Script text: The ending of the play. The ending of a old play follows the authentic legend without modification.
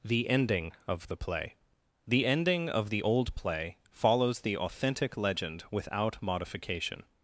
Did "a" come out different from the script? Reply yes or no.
yes